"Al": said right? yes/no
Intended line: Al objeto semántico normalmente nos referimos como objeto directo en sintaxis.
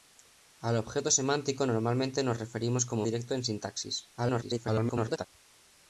yes